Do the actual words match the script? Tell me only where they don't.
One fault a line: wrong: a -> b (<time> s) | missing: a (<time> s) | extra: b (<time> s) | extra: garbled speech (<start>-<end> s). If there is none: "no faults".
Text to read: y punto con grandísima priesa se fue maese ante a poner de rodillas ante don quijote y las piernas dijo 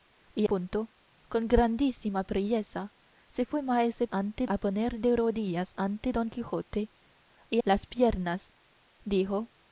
no faults